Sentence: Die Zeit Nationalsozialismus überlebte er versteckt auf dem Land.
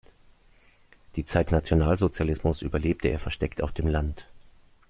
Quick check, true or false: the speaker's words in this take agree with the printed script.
true